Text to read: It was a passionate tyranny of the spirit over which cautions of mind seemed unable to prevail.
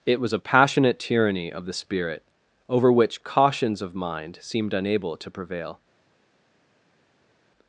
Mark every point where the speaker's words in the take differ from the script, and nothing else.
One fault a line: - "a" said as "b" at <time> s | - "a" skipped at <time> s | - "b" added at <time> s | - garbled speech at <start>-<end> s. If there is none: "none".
none